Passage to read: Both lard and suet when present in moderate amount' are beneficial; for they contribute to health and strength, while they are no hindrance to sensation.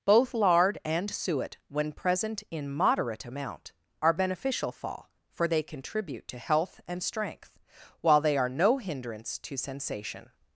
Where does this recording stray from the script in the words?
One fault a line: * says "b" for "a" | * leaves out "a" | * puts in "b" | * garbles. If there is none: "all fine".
* puts in "fall"